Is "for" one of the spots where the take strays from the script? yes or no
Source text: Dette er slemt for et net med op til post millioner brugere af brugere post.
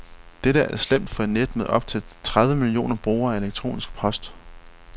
no